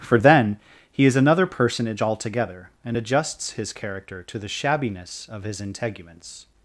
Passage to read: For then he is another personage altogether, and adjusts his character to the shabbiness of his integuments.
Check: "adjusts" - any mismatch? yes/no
no